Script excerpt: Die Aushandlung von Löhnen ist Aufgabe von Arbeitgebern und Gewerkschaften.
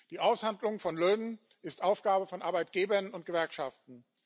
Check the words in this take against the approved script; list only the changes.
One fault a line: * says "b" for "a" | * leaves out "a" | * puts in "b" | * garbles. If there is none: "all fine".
all fine